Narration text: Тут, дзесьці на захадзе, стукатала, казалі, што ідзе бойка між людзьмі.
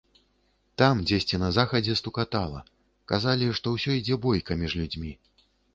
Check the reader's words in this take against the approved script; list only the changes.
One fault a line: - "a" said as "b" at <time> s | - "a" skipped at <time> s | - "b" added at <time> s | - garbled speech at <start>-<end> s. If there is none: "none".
- "Тут" said as "Там" at 0.8 s
- "ўсё" added at 3.8 s